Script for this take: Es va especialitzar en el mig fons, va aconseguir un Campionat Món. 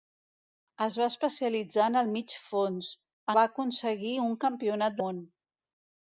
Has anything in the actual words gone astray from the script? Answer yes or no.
no